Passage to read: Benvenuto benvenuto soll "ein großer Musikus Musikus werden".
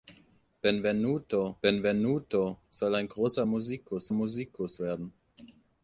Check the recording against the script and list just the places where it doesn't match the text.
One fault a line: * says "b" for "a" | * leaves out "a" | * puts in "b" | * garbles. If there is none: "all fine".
all fine